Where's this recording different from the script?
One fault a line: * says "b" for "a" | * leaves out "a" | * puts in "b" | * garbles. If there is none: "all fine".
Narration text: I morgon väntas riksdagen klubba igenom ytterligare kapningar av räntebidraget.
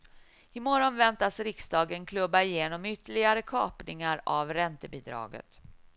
all fine